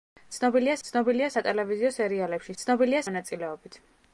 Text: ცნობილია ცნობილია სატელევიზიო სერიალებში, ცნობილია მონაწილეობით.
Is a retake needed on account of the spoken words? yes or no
no